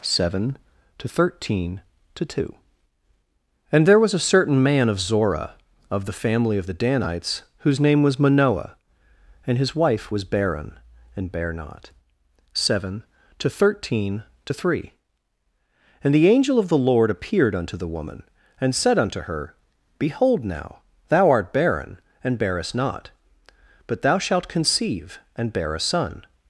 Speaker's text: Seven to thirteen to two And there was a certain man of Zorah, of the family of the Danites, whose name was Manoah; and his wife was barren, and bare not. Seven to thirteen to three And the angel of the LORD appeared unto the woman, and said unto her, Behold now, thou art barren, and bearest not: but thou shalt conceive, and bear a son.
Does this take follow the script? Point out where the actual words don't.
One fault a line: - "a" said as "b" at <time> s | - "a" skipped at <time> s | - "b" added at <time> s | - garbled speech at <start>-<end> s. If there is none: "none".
none